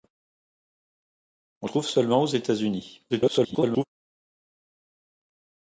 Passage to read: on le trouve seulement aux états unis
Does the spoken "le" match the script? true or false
false